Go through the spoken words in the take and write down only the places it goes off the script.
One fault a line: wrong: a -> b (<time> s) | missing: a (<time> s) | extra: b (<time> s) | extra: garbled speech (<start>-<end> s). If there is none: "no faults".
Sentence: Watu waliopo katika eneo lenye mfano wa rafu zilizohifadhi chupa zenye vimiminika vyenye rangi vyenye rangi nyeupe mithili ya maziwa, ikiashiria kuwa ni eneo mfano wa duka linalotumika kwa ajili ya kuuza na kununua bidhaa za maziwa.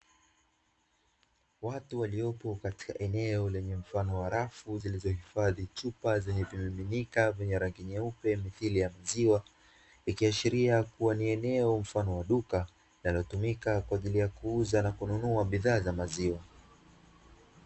missing: vyenye rangi (7.8 s)